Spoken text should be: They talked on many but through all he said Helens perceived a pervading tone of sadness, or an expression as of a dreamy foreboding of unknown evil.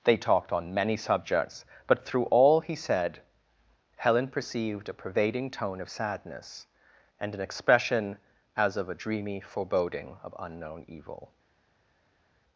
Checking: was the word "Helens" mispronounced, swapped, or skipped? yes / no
yes